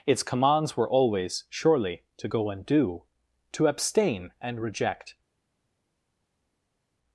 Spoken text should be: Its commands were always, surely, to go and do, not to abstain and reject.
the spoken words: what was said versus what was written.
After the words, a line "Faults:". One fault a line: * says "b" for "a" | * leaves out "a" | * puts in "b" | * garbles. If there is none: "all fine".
Its commands were always, surely, to go and do, to abstain and reject.
Faults:
* leaves out "not"